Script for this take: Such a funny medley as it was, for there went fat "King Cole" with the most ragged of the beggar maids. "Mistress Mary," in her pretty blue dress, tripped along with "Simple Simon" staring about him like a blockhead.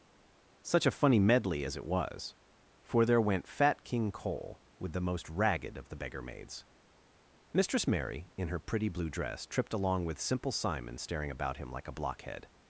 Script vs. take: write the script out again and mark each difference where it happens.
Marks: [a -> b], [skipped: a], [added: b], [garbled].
Such a funny medley as it was, for there went fat "King Cole" with the most ragged of the beggar maids. "Mistress Mary," in her pretty blue dress, tripped along with "Simple Simon" staring about him like a blockhead.